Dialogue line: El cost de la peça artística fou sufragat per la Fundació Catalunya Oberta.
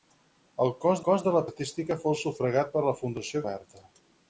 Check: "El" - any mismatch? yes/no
no